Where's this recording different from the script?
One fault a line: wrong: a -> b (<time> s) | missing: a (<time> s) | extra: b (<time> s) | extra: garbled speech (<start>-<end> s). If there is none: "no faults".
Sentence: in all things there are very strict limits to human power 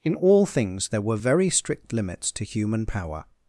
wrong: are -> were (1.0 s)